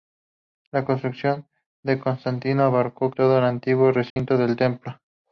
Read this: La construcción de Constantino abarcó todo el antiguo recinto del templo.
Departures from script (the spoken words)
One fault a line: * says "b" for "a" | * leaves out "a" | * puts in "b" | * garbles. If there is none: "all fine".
all fine